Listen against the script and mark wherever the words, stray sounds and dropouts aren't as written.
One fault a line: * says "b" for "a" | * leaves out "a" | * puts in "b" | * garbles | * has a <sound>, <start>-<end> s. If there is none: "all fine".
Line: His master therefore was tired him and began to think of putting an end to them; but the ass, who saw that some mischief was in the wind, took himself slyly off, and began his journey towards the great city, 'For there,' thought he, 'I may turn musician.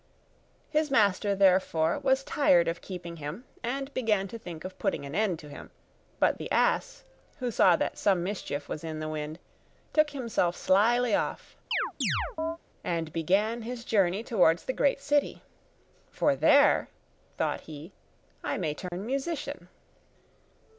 * puts in "of keeping"
* says "him" for "them"
* has a chirp, 11.7-12.6 s
* has a dropout, 18.9-18.9 s